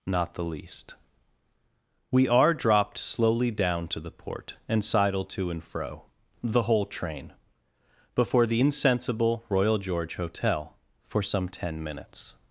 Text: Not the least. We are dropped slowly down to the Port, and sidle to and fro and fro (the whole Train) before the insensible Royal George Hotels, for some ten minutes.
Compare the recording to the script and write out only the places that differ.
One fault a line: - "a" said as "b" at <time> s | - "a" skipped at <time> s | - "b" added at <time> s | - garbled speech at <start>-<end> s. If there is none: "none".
- "and fro" skipped at 6.0 s
- "Hotels" said as "Hotel" at 10.1 s